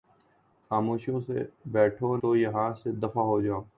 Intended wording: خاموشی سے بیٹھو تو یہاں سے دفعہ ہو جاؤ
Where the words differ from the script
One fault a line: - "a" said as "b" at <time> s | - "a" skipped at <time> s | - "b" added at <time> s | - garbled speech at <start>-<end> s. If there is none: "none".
none